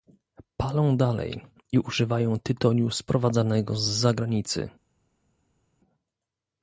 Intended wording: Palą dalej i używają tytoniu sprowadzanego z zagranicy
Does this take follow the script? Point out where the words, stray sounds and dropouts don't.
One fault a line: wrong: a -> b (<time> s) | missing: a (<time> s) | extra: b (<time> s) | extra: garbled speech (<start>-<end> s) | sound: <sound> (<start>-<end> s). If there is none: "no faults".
no faults